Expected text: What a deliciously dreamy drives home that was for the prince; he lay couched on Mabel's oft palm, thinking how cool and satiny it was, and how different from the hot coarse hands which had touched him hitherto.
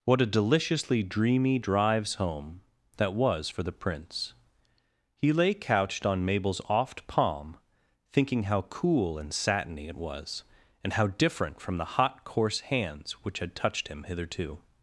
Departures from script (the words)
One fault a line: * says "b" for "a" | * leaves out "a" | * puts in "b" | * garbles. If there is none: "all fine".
all fine